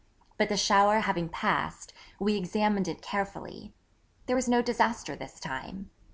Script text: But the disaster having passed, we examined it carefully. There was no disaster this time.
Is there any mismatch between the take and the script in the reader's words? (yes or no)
yes